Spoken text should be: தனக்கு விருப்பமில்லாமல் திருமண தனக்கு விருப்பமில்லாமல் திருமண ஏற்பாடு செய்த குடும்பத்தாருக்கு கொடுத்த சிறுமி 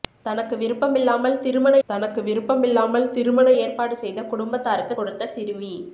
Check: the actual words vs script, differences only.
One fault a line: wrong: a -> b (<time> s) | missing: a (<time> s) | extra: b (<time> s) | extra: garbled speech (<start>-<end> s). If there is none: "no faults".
no faults